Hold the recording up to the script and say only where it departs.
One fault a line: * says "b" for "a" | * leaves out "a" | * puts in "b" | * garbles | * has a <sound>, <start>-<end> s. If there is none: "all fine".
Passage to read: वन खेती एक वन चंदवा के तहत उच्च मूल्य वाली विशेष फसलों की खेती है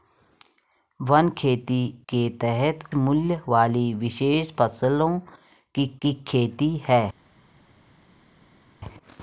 * leaves out "एक वन चंदवा"
* leaves out "उच्च"
* puts in "की"